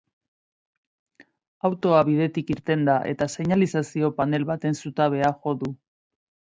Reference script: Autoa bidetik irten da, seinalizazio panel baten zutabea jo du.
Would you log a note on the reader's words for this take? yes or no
yes